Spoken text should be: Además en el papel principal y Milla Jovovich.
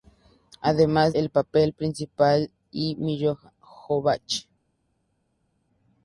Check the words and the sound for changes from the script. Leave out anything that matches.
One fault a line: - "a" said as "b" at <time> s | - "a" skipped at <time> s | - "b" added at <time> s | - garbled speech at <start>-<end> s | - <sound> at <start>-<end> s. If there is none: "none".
none